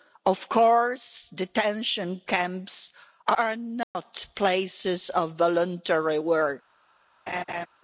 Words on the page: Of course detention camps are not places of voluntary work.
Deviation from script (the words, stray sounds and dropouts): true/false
true